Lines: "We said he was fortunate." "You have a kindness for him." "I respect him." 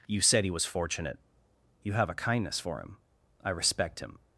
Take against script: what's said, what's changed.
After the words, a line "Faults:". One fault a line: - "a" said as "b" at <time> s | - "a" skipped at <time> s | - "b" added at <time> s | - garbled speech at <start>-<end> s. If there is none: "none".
"You said he was fortunate." "You have a kindness for him." "I respect him."
Faults:
- "We" said as "You" at 0.1 s